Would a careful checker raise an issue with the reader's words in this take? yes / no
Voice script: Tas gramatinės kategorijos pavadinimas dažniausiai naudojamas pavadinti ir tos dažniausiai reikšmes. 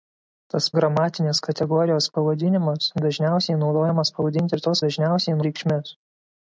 no